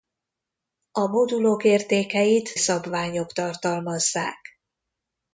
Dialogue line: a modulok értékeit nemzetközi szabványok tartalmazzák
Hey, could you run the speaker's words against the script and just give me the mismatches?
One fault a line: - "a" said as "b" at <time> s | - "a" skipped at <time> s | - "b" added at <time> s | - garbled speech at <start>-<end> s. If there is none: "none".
- "nemzetközi" skipped at 2.5 s